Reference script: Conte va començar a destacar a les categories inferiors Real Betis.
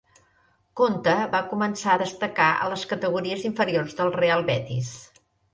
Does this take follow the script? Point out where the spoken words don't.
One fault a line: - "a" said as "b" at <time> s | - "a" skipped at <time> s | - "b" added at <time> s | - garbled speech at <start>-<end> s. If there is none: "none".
- "del" added at 4.0 s